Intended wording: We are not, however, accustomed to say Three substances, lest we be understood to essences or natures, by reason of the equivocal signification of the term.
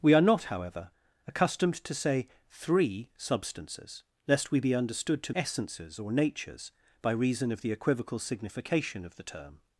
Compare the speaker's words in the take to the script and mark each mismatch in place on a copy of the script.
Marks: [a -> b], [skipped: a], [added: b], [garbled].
We are not, however, accustomed to say Three substances, lest we be understood to essences or natures, by reason of the equivocal signification of the term.